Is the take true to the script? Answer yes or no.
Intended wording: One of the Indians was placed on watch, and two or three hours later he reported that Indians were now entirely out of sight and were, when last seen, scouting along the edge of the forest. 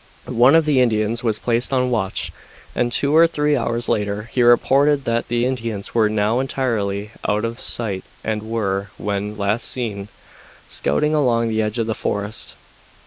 no